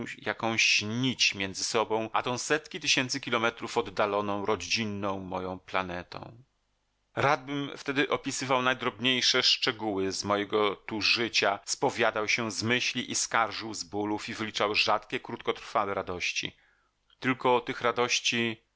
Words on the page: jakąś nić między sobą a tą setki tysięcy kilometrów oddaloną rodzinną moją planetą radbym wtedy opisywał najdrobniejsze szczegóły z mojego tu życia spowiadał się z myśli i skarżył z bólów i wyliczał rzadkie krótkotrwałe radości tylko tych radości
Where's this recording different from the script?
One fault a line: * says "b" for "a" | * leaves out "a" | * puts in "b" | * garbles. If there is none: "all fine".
all fine